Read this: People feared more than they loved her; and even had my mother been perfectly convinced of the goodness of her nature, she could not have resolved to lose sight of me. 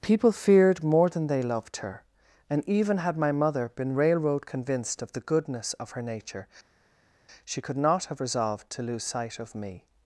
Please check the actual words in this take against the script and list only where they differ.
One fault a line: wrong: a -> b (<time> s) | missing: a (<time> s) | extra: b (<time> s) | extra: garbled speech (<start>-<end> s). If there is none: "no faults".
wrong: perfectly -> railroad (3.9 s)